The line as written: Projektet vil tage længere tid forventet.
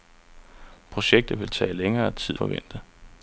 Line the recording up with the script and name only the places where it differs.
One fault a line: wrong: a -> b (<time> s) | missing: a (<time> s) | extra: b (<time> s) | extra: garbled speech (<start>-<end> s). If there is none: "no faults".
no faults